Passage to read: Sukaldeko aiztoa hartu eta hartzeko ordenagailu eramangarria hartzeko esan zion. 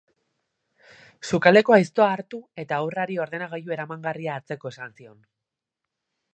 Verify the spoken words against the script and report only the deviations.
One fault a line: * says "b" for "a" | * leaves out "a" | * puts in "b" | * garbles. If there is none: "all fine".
* says "haurrari" for "hartzeko"